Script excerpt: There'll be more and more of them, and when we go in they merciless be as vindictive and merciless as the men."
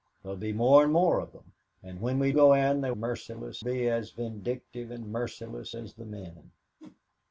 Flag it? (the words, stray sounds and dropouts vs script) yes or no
yes